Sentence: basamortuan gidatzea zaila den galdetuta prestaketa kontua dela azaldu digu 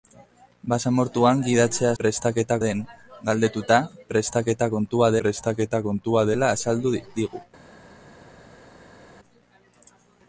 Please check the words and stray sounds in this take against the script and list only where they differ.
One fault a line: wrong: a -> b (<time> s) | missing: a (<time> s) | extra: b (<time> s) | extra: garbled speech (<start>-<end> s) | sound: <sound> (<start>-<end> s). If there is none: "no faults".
wrong: zaila -> prestaketa (2.0 s)
extra: prestaketa kontua (5.2 s)